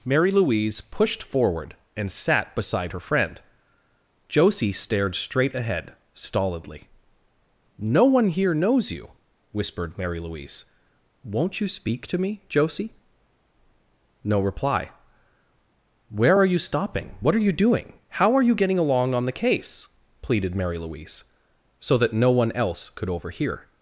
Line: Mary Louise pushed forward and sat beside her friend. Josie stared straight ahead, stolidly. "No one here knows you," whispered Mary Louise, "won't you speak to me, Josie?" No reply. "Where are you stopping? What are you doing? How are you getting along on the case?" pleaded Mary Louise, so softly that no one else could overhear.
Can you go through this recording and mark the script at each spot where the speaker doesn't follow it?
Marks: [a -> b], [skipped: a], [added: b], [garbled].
Mary Louise pushed forward and sat beside her friend. Josie stared straight ahead, stolidly. "No one here knows you," whispered Mary Louise, "won't you speak to me, Josie?" No reply. "Where are you stopping? What are you doing? How are you getting along on the case?" pleaded Mary Louise, so [skipped: softly] that no one else could overhear.